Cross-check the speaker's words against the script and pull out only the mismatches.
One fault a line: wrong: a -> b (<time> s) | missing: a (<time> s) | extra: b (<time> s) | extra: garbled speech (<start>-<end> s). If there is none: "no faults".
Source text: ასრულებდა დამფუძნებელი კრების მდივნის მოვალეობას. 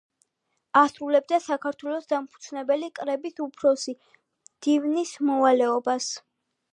extra: საქართველოს (1.5 s)
extra: უფროსი (3.5 s)